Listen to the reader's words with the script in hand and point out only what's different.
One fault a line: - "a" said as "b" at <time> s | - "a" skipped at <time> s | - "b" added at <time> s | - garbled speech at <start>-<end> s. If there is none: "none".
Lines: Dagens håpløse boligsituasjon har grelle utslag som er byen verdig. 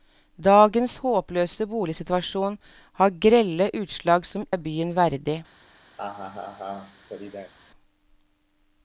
none